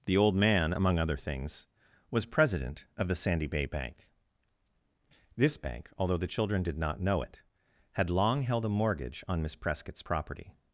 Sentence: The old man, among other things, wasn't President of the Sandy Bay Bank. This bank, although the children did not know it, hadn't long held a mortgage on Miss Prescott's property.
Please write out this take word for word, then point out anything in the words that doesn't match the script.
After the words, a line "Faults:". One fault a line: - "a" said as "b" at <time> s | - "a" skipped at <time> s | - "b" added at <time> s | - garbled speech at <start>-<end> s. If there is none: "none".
The old man, among other things, was President of the Sandy Bay Bank. This bank, although the children did not know it, had long held a mortgage on Miss Prescott's property.
Faults:
- "wasn't" said as "was" at 2.1 s
- "hadn't" said as "had" at 7.9 s